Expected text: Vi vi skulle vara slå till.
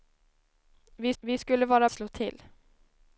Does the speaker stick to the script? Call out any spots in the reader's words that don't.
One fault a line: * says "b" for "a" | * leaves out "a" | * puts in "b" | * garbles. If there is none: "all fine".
all fine